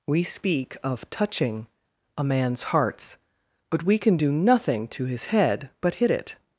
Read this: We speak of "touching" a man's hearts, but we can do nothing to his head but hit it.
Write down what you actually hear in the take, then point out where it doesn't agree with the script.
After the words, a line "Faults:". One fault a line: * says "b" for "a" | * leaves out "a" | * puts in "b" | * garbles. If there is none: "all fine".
We speak of "touching" a man's hearts, but we can do nothing to his head but hit it.
Faults:
all fine